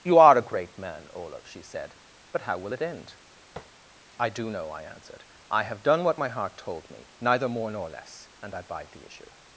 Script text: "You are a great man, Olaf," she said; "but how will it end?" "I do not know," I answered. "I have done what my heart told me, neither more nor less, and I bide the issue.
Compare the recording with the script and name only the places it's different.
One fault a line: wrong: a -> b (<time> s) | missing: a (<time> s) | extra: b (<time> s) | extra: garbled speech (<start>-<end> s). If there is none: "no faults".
missing: not (4.5 s)